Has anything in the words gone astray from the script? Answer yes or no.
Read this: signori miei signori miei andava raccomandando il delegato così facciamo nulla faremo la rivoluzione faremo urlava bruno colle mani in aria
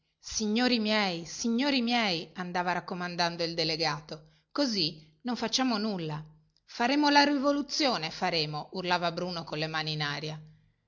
yes